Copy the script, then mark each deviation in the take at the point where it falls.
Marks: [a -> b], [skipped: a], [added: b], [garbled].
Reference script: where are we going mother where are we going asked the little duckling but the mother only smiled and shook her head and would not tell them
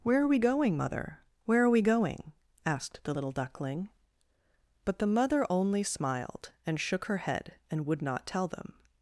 where are we going mother where are we going asked the little duckling but the mother only smiled and shook her head and would not tell them